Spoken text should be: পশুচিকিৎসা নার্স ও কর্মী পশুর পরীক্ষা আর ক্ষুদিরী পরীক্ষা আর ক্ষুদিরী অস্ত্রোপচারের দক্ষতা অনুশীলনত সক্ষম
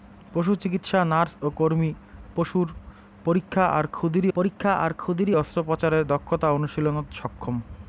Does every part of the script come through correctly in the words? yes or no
yes